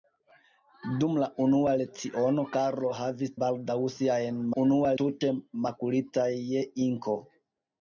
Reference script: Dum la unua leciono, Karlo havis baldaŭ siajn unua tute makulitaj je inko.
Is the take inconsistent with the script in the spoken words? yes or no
no